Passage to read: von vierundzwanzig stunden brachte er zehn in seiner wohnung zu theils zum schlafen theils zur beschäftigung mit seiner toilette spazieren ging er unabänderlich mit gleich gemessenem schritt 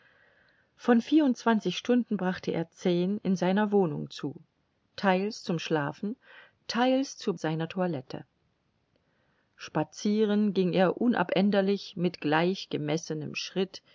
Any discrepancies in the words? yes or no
yes